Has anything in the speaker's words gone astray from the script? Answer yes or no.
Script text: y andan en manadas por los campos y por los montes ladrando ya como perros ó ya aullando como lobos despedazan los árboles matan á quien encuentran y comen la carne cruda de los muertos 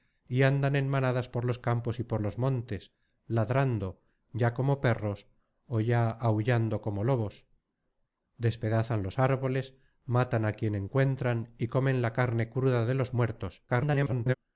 yes